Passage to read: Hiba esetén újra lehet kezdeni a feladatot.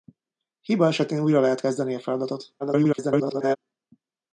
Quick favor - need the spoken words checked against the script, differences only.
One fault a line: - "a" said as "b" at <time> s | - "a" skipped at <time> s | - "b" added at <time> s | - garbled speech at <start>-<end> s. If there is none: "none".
- garbled speech at 2.6-3.6 s